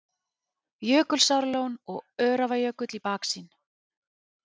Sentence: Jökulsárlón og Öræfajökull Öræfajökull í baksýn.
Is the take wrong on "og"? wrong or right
right